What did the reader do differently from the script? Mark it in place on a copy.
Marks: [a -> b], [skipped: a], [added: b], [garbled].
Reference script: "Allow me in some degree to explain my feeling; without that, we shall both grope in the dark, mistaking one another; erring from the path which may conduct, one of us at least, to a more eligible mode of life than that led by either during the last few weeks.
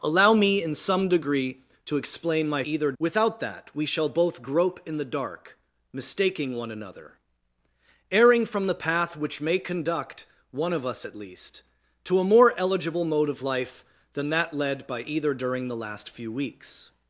"Allow me in some degree to explain my [feeling; -> either] without that, we shall both grope in the dark, mistaking one another; erring from the path which may conduct, one of us at least, to a more eligible mode of life than that led by either during the last few weeks.